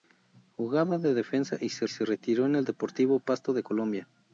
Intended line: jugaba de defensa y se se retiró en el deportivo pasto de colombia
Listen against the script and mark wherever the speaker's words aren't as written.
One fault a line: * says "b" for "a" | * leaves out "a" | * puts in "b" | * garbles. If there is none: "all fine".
all fine